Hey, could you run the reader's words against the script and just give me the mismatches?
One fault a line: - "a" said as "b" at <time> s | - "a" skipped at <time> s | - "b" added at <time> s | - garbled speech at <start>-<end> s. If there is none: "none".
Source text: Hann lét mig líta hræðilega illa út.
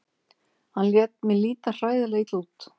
none